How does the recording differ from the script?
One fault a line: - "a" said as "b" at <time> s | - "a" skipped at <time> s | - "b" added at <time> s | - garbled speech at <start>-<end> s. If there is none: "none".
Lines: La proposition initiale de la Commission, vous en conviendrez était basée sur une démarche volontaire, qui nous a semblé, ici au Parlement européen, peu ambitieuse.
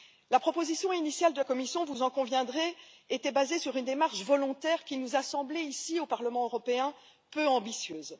- "la" skipped at 1.4 s